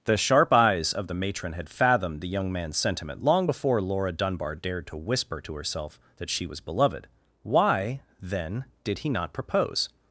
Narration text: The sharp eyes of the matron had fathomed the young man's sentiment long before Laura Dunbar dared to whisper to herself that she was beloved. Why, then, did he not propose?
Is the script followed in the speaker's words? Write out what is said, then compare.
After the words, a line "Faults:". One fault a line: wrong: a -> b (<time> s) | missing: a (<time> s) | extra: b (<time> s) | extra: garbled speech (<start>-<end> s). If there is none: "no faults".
The sharp eyes of the matron had fathomed the young man's sentiment long before Laura Dunbar dared to whisper to herself that she was beloved. Why, then, did he not propose?
Faults:
no faults